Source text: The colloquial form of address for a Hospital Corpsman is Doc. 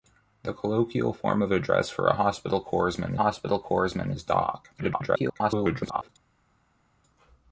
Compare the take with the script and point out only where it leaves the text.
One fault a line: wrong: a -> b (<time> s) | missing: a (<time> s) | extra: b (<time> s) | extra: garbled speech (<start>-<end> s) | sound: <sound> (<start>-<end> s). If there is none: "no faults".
extra: Hospital Corpsman (3.2 s)
extra: garbled speech (4.8-6.1 s)